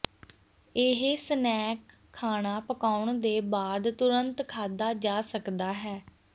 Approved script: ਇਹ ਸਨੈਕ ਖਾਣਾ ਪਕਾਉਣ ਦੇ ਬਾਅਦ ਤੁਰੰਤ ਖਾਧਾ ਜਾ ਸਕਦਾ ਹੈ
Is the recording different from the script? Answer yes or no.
no